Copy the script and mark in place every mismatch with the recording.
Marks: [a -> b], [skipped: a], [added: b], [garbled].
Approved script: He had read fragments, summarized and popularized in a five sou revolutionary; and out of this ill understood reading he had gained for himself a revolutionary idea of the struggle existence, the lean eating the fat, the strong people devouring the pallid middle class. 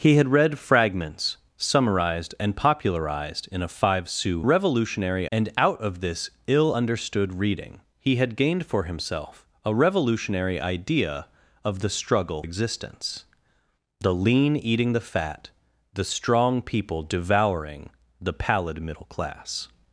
He had read fragments, summarized and popularized in a five sou revolutionary; and out of this ill understood reading he had gained for himself a revolutionary idea of the struggle existence, the lean eating the fat, the strong people devouring the pallid middle class.